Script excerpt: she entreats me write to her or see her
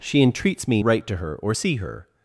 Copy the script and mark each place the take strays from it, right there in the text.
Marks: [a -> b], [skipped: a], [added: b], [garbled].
she entreats me write to her or see her